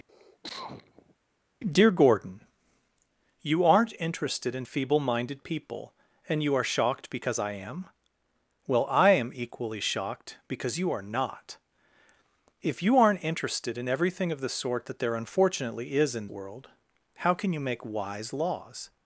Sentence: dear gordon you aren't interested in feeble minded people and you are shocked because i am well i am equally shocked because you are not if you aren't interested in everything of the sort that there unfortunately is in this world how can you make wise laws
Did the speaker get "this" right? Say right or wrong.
wrong